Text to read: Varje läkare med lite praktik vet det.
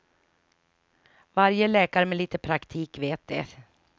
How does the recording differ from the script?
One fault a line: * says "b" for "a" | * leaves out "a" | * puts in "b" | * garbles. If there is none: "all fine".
all fine